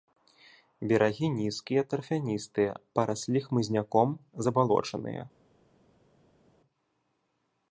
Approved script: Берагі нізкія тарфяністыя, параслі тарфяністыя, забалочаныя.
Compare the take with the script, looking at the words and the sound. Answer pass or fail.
fail